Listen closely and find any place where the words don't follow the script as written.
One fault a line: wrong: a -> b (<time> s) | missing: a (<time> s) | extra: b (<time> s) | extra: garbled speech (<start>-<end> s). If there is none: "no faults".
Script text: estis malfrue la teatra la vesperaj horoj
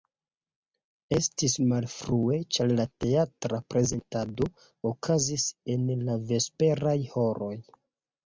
extra: ĉar (2.5 s)
extra: prezentado okazis en (3.7 s)